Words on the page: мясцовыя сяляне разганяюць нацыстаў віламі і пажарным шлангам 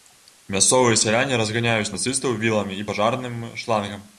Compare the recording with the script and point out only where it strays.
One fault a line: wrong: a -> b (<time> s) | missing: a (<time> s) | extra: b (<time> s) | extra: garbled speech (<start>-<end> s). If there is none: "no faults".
no faults